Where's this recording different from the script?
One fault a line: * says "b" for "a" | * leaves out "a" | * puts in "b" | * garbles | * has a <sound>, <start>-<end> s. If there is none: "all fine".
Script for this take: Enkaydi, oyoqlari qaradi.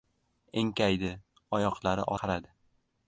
all fine